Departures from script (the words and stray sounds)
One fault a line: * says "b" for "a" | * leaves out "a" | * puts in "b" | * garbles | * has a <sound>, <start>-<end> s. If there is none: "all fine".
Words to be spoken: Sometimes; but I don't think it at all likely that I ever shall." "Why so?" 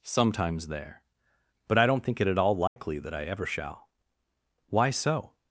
* puts in "there"
* has a dropout, 2.7-2.8 s